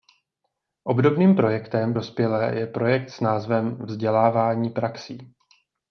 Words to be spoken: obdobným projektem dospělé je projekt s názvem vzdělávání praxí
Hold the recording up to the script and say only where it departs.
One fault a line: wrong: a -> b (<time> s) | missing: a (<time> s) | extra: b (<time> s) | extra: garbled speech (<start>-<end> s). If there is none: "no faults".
no faults